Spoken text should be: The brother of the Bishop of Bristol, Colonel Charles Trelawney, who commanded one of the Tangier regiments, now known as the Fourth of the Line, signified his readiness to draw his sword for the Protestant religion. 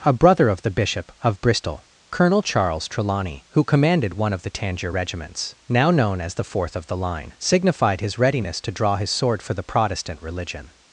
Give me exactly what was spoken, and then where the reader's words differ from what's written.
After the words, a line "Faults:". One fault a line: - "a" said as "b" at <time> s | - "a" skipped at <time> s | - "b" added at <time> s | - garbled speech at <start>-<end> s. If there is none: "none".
A brother of the Bishop of Bristol, Colonel Charles Trelawney, who commanded one of the Tangier regiments, now known as the Fourth of the Line, signified his readiness to draw his sword for the Protestant religion.
Faults:
- "The" said as "A" at 0.0 s